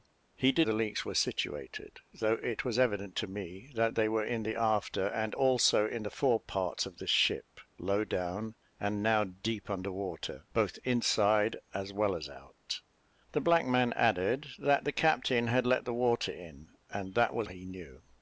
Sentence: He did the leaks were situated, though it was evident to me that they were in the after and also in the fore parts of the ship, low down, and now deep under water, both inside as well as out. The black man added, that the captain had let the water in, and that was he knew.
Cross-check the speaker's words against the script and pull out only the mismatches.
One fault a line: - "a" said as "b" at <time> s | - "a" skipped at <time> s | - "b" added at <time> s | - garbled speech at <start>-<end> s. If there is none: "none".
none